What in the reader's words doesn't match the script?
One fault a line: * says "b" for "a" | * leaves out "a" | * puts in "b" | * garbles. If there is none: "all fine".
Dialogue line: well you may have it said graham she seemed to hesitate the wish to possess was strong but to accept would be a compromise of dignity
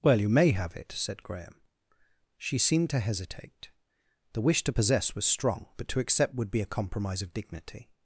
all fine